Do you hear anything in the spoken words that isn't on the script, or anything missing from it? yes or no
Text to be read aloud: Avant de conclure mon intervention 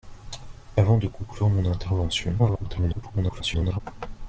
yes